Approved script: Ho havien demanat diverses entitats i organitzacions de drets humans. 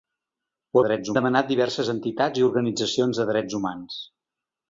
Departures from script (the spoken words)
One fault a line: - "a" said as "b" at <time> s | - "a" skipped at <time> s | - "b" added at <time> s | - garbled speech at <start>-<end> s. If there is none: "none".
- "havien" said as "drets" at 0.9 s